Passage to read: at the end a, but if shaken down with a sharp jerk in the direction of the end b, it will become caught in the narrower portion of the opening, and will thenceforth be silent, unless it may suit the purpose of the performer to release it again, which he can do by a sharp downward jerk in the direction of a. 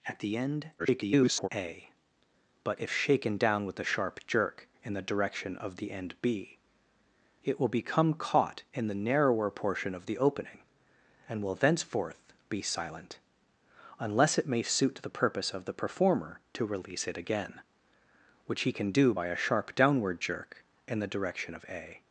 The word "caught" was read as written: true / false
true